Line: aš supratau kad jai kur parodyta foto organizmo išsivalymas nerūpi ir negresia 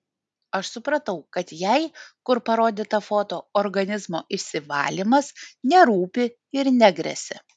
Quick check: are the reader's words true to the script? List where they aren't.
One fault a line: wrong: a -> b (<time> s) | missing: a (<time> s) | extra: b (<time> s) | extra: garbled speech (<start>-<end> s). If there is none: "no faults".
no faults